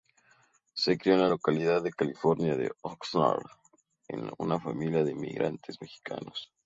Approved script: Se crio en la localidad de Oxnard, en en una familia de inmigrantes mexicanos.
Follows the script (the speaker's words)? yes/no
no